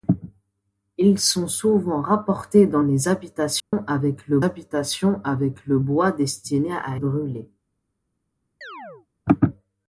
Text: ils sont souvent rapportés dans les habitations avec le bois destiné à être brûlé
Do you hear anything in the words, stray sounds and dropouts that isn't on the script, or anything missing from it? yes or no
yes